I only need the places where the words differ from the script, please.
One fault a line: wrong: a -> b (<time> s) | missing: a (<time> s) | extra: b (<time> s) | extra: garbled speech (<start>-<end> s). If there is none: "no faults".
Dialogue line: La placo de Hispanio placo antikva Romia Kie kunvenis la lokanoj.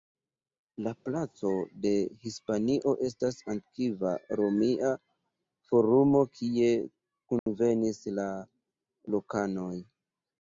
wrong: placo -> estas (3.1 s)
extra: Forumo (5.7 s)